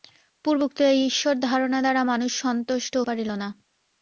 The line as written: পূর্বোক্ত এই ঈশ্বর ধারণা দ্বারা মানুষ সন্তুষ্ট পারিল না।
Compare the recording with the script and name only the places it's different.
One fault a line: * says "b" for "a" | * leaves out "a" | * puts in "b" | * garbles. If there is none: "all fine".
all fine